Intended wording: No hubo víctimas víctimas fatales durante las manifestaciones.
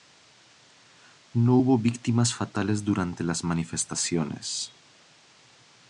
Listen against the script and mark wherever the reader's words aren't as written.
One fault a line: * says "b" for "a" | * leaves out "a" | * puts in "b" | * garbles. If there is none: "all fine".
* leaves out "víctimas"